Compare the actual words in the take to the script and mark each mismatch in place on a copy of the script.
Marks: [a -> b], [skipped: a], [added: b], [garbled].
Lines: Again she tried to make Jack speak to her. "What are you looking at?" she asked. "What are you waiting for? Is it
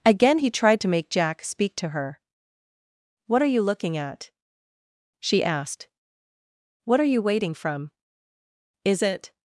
Again [she -> he] tried to make Jack speak to her. "What are you looking at?" she asked. "What are you waiting [for? -> from] Is it